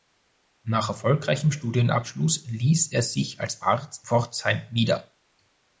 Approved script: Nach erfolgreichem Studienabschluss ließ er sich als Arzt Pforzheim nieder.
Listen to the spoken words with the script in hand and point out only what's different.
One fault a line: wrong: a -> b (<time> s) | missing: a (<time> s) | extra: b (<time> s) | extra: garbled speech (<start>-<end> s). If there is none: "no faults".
no faults